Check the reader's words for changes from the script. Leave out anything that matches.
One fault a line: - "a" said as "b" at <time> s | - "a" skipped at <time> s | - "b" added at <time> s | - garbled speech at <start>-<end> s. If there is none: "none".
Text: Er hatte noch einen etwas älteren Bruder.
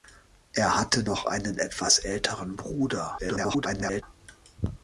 - garbled speech at 3.2-4.0 s